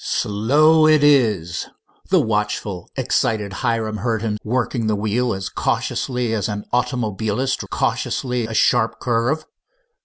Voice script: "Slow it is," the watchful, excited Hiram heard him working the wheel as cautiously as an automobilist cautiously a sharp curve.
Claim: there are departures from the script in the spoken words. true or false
false